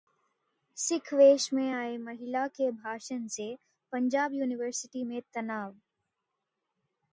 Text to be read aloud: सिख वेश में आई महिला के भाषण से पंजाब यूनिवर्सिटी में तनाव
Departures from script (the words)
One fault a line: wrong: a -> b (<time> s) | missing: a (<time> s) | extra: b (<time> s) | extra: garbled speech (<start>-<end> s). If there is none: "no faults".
no faults